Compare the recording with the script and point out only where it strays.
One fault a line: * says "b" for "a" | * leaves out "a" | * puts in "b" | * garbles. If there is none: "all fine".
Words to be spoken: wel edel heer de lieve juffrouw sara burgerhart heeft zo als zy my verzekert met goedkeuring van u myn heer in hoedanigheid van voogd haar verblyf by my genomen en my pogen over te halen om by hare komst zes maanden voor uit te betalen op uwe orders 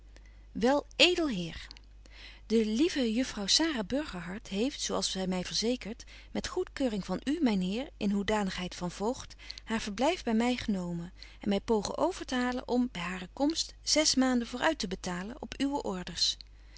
all fine